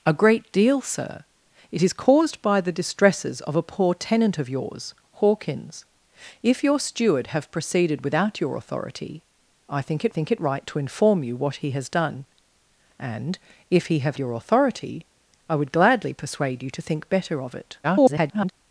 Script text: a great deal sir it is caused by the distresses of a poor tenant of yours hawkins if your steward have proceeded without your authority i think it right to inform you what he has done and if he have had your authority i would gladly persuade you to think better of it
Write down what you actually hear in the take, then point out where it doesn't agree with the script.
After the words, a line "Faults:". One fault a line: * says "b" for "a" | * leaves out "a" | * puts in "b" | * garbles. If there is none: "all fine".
a great deal sir it is caused by the distresses of a poor tenant of yours hawkins if your steward have proceeded without your authority i think it think it right to inform you what he has done and if he have your authority i would gladly persuade you to think better of it [garbled]
Faults:
* puts in "think it"
* leaves out "had"
* garbles